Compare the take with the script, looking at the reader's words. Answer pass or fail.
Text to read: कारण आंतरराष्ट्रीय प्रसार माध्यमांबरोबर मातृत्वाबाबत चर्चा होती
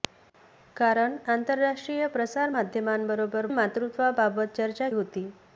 pass